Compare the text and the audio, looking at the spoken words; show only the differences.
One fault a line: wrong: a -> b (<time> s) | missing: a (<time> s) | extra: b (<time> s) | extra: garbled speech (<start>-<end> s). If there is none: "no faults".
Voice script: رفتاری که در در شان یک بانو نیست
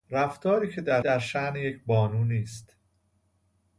no faults